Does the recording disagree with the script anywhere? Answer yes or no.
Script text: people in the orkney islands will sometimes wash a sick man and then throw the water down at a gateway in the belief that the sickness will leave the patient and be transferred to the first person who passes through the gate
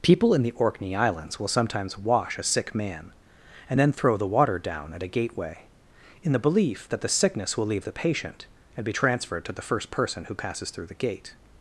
no